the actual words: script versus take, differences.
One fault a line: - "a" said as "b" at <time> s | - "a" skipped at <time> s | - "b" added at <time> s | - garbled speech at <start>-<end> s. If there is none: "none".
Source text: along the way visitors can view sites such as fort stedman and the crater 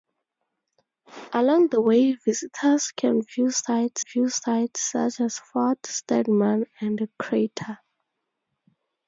- "view sites" added at 4.0 s